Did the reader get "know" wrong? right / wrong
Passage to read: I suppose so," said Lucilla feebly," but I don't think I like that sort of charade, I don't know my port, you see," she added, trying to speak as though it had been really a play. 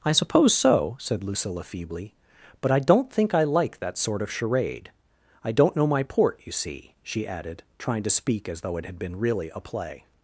right